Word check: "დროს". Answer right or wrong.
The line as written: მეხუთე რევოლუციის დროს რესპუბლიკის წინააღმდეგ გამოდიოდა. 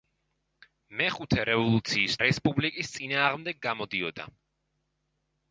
wrong